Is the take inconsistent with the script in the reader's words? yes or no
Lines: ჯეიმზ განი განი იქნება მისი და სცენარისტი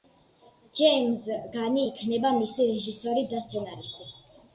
yes